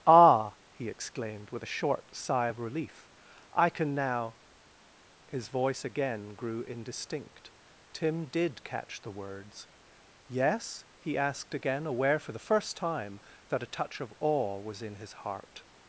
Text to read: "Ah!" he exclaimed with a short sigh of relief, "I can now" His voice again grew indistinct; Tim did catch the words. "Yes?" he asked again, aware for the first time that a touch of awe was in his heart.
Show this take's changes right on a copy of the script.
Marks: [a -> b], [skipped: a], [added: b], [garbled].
"Ah!" he exclaimed with a short sigh of relief, "I can now" His voice again grew indistinct; Tim did catch the words. "Yes?" he asked again, aware for the first time that a touch of awe was in his heart.